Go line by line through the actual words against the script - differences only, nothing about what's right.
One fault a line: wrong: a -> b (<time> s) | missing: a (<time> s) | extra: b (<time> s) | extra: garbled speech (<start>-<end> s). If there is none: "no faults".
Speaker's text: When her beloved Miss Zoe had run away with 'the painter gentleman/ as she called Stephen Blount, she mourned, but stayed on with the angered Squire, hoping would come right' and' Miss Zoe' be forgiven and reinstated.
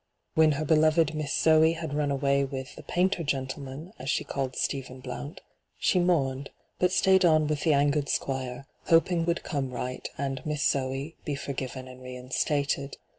no faults